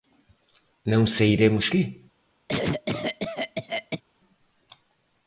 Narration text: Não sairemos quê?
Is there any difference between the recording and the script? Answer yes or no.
no